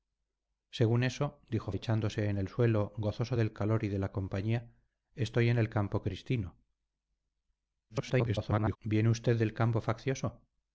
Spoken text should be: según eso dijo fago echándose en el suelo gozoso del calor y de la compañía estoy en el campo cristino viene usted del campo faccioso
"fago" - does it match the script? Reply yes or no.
no